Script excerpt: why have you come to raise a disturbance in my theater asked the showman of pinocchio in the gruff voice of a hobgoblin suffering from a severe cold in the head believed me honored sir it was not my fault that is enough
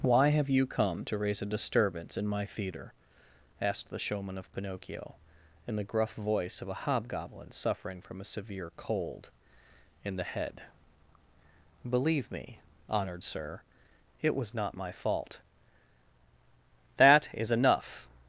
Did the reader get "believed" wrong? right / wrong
wrong